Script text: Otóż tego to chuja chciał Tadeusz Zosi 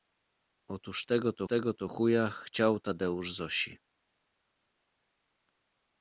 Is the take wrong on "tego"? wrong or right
right